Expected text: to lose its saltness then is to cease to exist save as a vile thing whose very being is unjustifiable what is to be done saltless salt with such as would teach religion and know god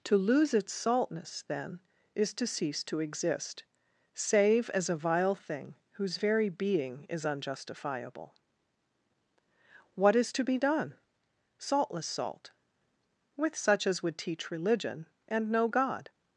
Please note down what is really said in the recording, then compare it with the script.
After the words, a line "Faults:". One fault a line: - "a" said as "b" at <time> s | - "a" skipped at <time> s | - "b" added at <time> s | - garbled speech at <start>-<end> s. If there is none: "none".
to lose its saltness then is to cease to exist save as a vile thing whose very being is unjustifiable what is to be done saltless salt with such as would teach religion and know god
Faults:
none